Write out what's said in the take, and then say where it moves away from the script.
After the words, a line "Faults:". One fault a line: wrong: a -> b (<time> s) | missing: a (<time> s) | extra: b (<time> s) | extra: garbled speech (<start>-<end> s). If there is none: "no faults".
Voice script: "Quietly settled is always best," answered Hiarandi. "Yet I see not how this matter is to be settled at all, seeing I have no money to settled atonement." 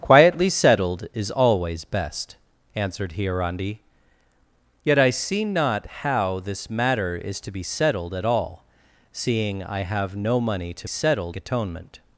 "Quietly settled is always best," answered Hiarandi. "Yet I see not how this matter is to be settled at all, seeing I have no money to settled atonement."
Faults:
no faults